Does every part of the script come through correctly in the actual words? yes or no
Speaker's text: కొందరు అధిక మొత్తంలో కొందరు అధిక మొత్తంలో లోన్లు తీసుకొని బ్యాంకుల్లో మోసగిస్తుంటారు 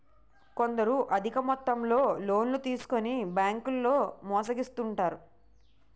no